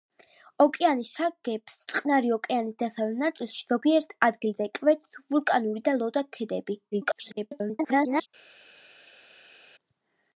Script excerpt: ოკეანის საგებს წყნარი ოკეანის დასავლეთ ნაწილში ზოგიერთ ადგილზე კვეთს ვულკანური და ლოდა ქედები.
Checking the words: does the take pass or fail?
fail